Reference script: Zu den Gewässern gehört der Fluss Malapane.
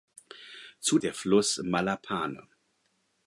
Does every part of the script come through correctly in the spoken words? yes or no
no